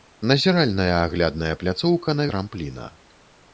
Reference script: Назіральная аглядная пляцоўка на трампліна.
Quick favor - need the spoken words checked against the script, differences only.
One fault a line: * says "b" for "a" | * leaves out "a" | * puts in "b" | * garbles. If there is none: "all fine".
all fine